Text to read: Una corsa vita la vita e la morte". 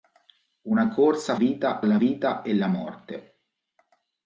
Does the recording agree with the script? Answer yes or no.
yes